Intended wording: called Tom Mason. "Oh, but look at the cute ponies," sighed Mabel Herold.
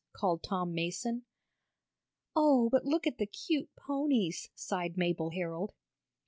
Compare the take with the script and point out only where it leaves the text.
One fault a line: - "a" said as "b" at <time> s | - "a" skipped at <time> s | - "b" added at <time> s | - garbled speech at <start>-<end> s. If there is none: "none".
none